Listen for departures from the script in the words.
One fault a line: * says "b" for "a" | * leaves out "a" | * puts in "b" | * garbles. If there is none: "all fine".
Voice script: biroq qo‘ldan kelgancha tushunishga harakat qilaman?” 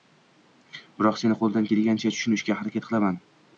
* puts in "seni"